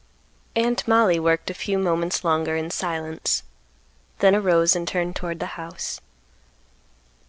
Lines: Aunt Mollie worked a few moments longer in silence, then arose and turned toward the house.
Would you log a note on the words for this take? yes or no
no